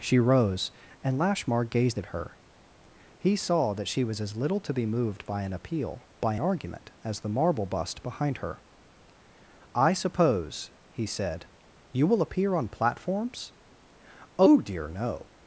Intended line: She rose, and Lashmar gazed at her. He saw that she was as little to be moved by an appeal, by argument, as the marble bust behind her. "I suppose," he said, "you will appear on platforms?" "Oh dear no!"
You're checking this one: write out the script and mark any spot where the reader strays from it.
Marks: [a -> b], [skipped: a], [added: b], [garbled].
She rose, and Lashmar gazed at her. He saw that she was as little to be moved by an appeal, by argument, as the marble bust behind her. "I suppose," he said, "you will appear on platforms?" "Oh dear no!"